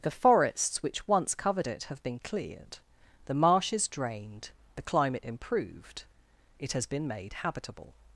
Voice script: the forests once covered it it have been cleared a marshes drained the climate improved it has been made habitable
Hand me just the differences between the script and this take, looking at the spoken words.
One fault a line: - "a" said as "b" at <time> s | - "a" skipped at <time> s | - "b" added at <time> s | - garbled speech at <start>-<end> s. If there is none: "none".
- "which" added at 0.8 s
- "it" skipped at 1.8 s
- "a" said as "the" at 3.2 s